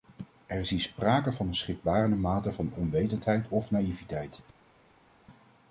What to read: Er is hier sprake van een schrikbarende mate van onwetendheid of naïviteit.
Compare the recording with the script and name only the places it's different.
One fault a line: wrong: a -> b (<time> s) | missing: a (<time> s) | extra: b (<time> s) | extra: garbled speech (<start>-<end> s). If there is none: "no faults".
no faults